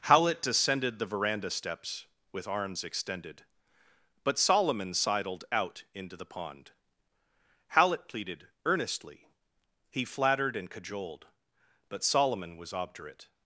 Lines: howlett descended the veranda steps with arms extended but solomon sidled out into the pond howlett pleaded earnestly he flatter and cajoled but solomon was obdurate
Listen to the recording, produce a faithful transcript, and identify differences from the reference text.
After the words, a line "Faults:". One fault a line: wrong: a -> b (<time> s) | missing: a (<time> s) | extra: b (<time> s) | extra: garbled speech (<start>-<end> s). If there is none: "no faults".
howlett descended the veranda steps with arms extended but solomon sidled out into the pond howlett pleaded earnestly he flattered and cajoled but solomon was obdurate
Faults:
wrong: flatter -> flattered (10.0 s)